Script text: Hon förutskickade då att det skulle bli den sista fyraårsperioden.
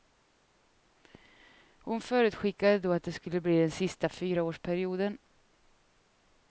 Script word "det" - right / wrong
right